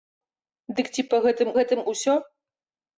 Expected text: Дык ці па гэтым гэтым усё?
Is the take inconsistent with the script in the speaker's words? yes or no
no